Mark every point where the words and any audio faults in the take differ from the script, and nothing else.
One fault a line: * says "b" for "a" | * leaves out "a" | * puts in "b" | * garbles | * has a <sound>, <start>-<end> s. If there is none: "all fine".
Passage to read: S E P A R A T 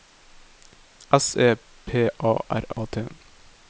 * has a dropout, 2.7-2.8 s